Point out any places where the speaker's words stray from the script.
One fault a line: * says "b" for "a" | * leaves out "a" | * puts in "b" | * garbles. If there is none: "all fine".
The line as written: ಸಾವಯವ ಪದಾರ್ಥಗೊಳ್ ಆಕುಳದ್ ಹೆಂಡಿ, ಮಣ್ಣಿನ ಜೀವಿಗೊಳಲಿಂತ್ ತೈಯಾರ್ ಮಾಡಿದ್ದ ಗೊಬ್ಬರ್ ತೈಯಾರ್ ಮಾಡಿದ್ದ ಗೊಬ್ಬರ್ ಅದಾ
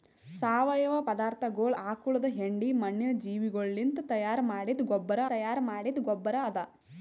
all fine